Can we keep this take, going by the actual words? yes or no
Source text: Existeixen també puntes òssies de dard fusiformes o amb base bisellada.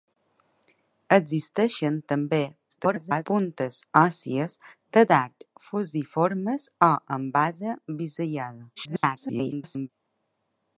no